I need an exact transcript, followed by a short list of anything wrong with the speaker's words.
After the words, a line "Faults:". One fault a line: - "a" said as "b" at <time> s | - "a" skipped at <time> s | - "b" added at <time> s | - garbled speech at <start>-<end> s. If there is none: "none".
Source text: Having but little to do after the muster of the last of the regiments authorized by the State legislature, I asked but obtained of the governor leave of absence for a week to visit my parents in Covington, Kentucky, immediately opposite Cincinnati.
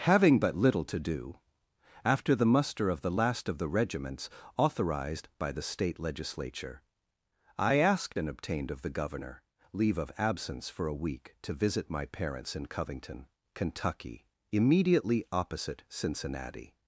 Having but little to do after the muster of the last of the regiments authorized by the State legislature, I asked and obtained of the governor leave of absence for a week to visit my parents in Covington, Kentucky, immediately opposite Cincinnati.
Faults:
- "but" said as "and" at 8.2 s